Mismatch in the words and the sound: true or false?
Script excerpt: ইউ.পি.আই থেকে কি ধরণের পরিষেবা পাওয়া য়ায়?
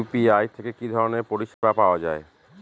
true